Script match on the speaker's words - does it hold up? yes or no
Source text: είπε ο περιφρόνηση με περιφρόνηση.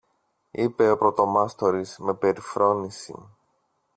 no